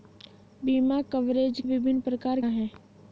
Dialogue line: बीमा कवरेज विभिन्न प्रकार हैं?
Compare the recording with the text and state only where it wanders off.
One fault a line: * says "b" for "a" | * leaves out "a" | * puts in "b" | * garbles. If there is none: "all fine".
all fine